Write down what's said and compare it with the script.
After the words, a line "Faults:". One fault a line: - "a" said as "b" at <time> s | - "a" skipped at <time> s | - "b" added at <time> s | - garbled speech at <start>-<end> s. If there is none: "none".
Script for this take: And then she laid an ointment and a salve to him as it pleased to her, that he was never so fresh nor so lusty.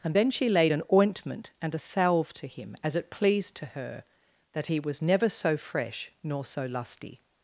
And then she laid an ointment and a salve to him as it pleased to her, that he was never so fresh nor so lusty.
Faults:
none